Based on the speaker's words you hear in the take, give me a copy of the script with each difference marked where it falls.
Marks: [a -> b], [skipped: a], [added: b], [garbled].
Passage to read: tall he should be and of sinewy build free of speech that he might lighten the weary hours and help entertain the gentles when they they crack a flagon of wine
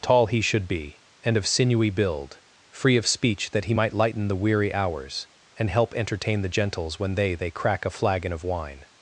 tall he should be and of sinewy build free of speech that he might lighten the weary hours and help entertain the gentles when they they crack a flagon of wine